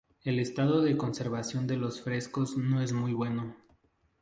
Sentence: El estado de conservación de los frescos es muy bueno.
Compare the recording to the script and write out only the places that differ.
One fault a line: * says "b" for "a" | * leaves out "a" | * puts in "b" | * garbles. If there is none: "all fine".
* puts in "no"